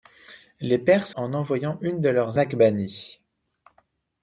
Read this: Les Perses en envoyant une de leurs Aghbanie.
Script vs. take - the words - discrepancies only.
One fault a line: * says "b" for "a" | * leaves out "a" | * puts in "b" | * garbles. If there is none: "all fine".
all fine